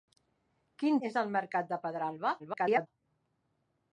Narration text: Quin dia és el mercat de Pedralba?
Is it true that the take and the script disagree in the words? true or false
true